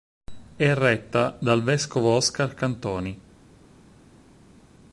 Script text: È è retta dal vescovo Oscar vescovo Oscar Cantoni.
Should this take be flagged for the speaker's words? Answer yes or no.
yes